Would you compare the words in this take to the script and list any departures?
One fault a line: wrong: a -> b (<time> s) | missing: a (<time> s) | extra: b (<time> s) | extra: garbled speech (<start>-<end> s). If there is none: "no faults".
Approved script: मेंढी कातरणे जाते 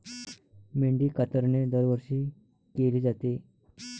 extra: दरवर्षी केली (1.6 s)